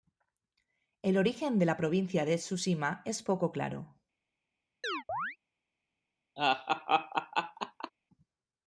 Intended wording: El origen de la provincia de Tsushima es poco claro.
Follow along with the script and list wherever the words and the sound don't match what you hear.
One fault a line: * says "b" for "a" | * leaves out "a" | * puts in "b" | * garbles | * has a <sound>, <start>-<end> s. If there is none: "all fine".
* has a chirp, 4.8-5.4 s
* has a laugh, 6.4-7.9 s